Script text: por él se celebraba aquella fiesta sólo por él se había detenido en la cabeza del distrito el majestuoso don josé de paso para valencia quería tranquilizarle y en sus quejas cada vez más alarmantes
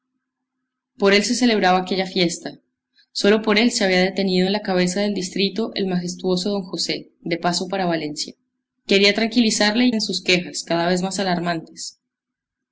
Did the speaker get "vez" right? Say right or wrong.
right